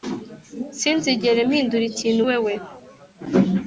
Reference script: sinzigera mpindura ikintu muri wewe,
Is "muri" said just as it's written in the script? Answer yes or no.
no